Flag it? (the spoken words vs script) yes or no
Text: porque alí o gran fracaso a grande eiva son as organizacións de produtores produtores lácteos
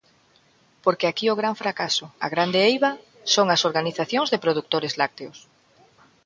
yes